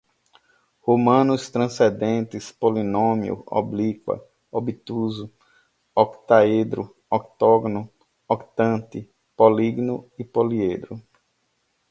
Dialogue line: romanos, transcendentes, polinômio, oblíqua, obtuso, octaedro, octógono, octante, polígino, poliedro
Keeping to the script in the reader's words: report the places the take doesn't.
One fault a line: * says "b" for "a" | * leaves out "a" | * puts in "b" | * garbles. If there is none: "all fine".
all fine